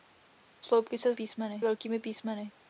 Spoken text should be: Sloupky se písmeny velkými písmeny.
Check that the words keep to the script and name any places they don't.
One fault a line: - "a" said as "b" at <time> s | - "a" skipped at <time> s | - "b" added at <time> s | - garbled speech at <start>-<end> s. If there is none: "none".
none